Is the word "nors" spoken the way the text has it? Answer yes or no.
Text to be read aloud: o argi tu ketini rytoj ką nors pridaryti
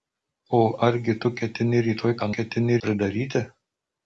no